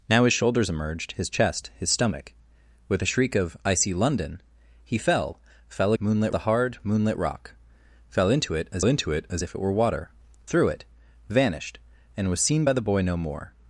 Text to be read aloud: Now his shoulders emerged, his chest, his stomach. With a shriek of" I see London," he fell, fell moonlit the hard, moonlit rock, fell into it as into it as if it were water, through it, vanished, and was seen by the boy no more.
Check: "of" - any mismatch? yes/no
no